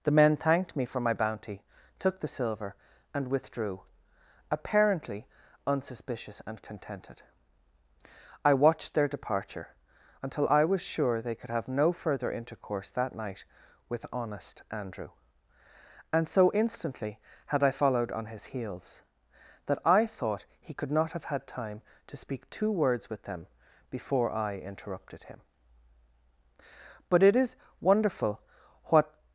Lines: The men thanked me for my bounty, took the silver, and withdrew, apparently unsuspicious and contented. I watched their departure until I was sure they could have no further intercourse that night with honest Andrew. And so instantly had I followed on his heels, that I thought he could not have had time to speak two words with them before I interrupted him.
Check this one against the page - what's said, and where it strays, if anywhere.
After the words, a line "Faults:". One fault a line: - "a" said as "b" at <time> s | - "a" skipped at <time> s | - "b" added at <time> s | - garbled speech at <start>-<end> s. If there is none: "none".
The men thanked me for my bounty, took the silver, and withdrew, apparently unsuspicious and contented. I watched their departure until I was sure they could have no further intercourse that night with honest Andrew. And so instantly had I followed on his heels, that I thought he could not have had time to speak two words with them before I interrupted him. But it is wonderful what
Faults:
- "But it is wonderful what" added at 27.1 s